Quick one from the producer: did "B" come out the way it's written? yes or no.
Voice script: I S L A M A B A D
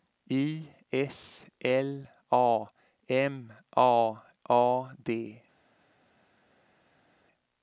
no